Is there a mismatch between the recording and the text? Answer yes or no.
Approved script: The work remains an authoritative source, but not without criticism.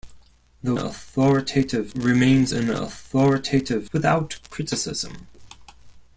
yes